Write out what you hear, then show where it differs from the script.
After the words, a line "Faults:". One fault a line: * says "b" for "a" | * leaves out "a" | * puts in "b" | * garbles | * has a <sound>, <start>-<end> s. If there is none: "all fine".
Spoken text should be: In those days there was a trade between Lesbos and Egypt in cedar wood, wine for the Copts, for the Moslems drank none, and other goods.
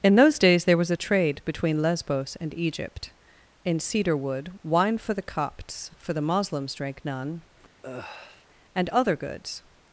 In those days there was a trade between Lesbos and Egypt in cedar wood, wine for the Copts, for the Moslems drank none, and other goods.
Faults:
* has a sigh, 7.8-8.5 s